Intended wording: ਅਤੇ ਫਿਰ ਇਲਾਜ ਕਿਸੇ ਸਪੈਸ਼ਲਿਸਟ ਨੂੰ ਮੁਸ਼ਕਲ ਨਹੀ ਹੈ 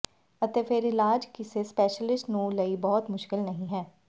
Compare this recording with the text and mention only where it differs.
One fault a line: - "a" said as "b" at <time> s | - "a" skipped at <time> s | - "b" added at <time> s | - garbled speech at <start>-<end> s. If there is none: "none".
- "ਲਈ ਬਹੁਤ" added at 2.5 s